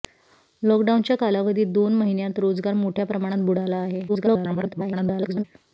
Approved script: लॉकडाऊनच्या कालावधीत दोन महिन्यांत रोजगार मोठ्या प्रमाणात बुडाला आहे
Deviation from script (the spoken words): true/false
true